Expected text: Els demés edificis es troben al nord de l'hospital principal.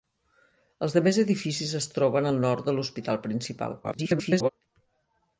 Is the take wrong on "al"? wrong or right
right